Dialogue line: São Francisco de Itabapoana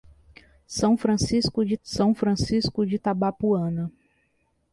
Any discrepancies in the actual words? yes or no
yes